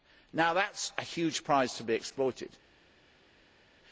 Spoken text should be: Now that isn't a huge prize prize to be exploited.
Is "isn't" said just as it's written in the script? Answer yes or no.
no